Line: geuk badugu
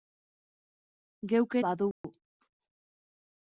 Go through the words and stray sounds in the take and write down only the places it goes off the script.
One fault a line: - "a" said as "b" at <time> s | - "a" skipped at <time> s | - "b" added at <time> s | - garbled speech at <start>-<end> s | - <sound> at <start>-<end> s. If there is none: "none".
- dropout at 1.9-2.0 s